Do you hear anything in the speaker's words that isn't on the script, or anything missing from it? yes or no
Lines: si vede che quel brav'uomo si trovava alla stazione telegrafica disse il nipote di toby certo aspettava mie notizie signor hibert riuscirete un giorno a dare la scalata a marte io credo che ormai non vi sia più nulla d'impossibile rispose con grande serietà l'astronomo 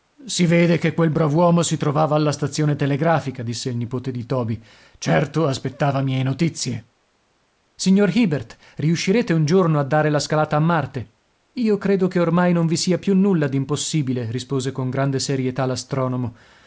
no